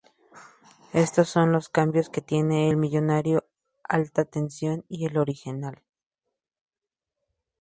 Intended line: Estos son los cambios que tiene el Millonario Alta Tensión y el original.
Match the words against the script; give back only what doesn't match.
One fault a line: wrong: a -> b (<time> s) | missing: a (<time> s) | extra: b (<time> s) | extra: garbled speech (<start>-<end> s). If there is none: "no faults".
no faults